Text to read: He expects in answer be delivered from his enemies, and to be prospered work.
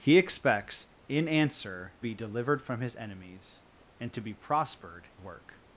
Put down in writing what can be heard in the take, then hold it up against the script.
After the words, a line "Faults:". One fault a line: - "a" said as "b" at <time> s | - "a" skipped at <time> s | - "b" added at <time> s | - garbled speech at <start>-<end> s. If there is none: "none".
He expects in answer be delivered from his enemies, and to be prospered work.
Faults:
none